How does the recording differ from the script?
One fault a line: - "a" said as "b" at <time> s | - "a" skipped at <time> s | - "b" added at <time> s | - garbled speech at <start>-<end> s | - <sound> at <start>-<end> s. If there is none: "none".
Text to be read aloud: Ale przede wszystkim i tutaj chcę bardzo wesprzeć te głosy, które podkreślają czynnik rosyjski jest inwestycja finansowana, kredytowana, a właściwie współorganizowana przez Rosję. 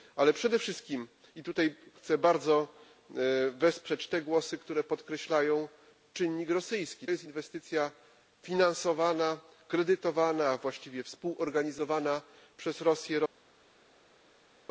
none